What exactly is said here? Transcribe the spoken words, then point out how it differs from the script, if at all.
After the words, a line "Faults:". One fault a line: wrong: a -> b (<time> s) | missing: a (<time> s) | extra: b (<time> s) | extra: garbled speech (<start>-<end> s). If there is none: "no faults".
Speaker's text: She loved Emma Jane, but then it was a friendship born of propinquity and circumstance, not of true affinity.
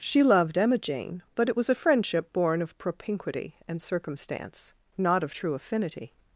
She loved Emma Jane, but it was a friendship born of propinquity and circumstance, not of true affinity.
Faults:
missing: then (1.5 s)